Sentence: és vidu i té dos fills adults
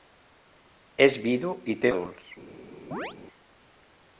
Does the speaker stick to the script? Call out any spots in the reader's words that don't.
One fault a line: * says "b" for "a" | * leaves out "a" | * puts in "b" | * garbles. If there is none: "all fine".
* leaves out "dos fills"